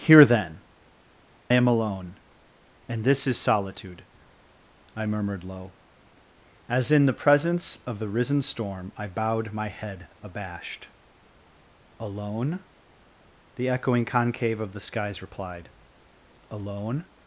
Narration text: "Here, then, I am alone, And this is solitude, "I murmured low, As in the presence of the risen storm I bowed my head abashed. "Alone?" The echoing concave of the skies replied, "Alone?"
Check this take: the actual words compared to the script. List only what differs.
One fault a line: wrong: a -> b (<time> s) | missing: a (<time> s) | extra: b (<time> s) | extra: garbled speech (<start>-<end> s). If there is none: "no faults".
missing: I (0.6 s)